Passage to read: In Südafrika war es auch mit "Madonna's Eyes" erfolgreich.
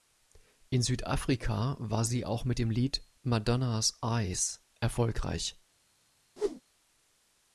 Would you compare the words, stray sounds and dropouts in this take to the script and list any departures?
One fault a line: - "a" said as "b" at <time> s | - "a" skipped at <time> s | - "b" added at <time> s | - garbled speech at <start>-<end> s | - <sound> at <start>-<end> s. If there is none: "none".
- "es" said as "sie" at 2.0 s
- "dem Lied" added at 2.6 s
- whoosh at 6.4-6.6 s